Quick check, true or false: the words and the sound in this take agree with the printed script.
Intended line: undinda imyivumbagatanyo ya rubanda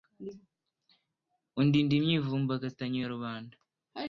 true